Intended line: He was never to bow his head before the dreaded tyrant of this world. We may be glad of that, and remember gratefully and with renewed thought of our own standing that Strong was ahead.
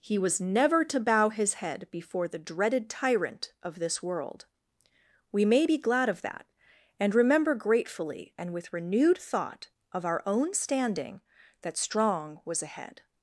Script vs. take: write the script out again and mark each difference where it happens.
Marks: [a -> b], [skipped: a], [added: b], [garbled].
He was never to bow his head before the dreaded tyrant of this world. We may be glad of that, and remember gratefully and with renewed thought of our own standing that Strong was ahead.